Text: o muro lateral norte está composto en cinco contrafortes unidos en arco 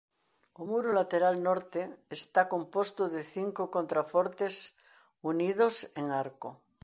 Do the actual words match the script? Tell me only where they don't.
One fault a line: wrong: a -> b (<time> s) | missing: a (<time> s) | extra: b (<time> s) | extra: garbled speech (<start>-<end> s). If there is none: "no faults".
wrong: en -> de (3.1 s)